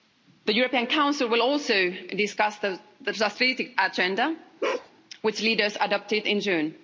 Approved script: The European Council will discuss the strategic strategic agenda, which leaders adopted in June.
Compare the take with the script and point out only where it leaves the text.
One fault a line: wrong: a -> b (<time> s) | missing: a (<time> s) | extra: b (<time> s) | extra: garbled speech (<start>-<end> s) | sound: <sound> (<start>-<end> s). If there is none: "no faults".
extra: also (1.4 s)
missing: strategic (3.7 s)
sound: bark (4.6-4.9 s)